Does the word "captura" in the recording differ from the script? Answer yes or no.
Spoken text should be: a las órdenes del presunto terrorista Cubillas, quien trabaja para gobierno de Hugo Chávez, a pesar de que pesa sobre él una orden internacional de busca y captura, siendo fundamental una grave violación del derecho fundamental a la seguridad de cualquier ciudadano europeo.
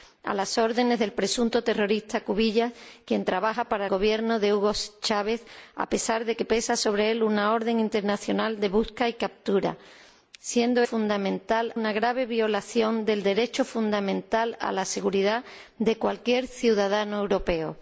no